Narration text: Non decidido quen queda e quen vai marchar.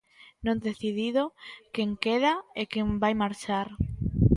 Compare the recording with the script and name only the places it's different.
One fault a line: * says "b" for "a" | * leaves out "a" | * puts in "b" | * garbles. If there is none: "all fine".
all fine